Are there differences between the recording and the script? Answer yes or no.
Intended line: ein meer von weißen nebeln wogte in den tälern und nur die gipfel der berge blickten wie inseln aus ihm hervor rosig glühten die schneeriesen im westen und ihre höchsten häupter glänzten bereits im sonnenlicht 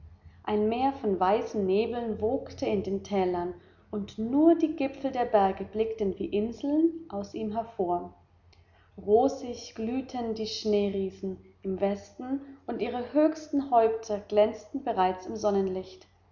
no